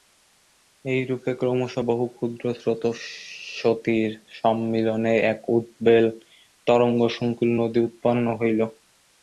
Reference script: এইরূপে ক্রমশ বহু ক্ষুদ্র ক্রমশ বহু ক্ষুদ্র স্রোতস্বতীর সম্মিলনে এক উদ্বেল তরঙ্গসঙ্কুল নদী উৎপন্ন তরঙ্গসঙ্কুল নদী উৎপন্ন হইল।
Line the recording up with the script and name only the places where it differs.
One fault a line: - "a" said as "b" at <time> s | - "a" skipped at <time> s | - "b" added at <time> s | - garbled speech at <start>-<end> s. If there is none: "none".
- "ক্রমশ বহু ক্ষুদ্র" skipped at 2.4 s
- "তরঙ্গসঙ্কুল নদী উৎপন্ন" skipped at 8.3 s